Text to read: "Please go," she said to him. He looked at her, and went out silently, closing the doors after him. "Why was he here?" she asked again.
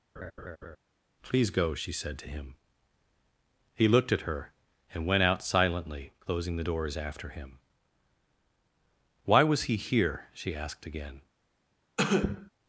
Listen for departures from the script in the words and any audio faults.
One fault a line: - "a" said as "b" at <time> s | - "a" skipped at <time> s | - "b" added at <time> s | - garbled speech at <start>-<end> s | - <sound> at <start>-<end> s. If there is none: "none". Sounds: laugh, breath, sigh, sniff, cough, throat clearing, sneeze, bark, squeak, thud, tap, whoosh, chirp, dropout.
- laugh at 0.2-0.8 s
- cough at 12.0-12.5 s